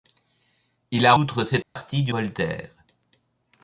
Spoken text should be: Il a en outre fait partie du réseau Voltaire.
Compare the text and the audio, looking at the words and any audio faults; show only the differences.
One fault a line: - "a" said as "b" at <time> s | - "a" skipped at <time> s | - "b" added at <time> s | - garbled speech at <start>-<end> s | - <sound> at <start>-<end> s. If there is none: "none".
- "en" skipped at 1.1 s
- dropout at 1.6-1.8 s
- "réseau" skipped at 2.1 s